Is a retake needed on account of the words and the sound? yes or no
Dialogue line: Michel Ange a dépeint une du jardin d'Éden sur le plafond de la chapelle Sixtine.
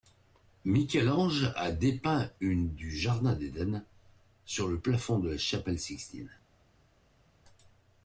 no